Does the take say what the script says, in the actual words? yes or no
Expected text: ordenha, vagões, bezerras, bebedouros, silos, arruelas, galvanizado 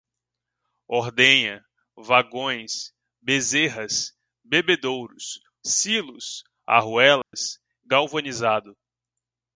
yes